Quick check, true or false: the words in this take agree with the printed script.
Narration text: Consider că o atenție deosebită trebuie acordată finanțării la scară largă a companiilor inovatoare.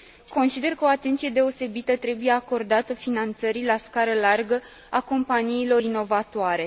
true